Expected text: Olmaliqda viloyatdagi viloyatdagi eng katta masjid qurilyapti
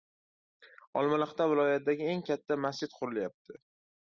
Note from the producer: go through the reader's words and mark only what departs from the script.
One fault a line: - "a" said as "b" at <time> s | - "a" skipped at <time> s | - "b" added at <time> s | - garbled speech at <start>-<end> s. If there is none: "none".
- "viloyatdagi" skipped at 2.1 s